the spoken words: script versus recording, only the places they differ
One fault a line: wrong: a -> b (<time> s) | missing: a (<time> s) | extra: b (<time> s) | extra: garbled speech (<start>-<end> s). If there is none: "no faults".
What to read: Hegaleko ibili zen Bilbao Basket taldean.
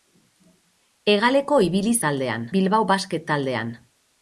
wrong: zen -> taldean (2.1 s)